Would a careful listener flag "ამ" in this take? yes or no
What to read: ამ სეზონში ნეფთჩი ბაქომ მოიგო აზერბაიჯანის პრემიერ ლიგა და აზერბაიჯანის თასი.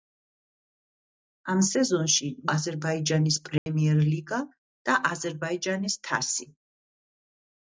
no